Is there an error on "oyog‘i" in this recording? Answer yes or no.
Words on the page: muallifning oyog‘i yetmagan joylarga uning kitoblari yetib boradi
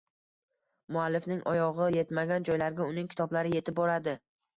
no